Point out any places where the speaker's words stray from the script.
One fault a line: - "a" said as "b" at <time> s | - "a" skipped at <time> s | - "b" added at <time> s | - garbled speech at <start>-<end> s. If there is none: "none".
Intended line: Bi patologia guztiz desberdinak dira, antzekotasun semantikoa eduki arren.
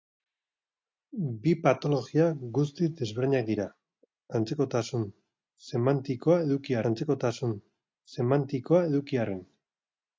- "antzekotasun semantikoa eduki" added at 6.9 s